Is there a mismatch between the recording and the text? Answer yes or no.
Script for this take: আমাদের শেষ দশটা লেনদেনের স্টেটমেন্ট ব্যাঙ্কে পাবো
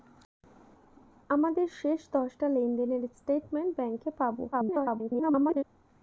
yes